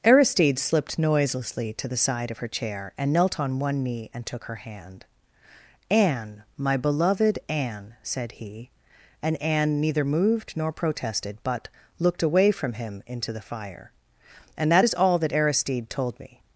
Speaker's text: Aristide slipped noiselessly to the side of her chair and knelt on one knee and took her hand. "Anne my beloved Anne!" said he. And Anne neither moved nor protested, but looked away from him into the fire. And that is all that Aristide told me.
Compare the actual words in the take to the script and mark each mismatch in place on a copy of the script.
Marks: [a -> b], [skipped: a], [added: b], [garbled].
Aristide slipped noiselessly to the side of her chair and knelt on one knee and took her hand. "Anne my beloved Anne!" said he. And Anne neither moved nor protested, but looked away from him into the fire. And that is all that Aristide told me.